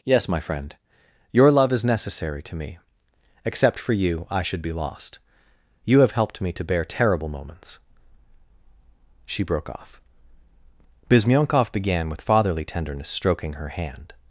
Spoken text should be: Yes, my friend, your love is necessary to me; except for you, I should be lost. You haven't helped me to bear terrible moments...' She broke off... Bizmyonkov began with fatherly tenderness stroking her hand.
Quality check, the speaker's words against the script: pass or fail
fail